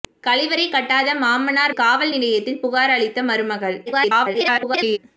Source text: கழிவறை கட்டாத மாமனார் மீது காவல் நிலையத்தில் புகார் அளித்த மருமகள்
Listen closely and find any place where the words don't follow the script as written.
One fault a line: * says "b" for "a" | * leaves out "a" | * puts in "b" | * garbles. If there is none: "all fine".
* leaves out "மீது"
* garbles